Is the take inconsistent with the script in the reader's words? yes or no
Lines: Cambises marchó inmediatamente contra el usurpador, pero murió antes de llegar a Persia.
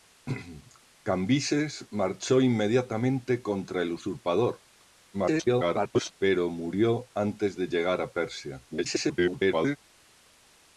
yes